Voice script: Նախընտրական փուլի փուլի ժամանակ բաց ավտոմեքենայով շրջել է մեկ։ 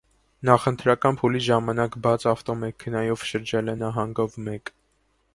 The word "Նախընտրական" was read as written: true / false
true